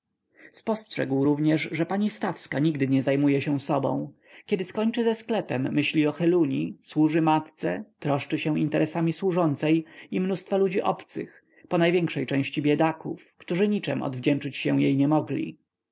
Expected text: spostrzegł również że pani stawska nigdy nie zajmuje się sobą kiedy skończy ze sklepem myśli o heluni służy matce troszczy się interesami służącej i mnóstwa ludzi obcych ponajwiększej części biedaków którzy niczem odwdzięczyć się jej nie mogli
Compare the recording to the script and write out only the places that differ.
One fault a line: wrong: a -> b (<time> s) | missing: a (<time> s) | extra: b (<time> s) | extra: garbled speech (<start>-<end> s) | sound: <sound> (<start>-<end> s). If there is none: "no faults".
no faults